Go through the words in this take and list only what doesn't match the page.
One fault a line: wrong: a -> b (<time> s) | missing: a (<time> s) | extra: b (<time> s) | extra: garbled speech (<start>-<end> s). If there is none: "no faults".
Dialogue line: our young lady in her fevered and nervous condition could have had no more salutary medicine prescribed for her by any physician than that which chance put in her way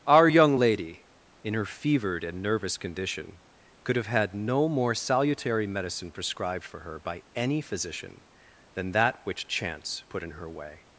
no faults